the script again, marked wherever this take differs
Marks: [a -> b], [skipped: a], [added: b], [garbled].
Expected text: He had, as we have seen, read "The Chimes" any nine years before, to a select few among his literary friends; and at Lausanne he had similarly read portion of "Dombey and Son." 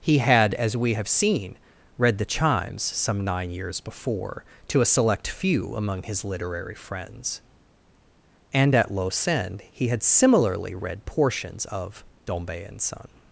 He had, as we have seen, read "The Chimes" [any -> some] nine years before, to a select few among his literary friends; and at Lausanne he had similarly read [portion -> portions] of "Dombey and Son."